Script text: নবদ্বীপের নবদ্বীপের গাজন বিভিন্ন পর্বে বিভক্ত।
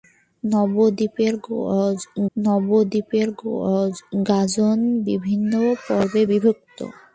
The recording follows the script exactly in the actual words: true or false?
true